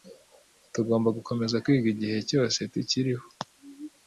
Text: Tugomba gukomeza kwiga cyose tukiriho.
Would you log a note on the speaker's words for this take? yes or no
yes